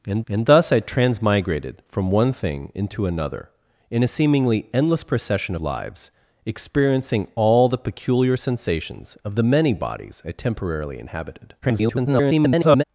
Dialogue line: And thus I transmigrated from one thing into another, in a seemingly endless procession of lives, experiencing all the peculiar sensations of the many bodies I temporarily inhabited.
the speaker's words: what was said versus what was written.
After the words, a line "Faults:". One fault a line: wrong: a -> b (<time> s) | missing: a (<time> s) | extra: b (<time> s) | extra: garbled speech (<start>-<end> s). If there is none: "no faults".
And and thus I transmigrated from one thing into another, in a seemingly endless procession lives, experiencing all the peculiar sensations of the many bodies I temporarily inhabited. [garbled]
Faults:
extra: and (0.3 s)
missing: of (5.5 s)
extra: garbled speech (11.6-12.8 s)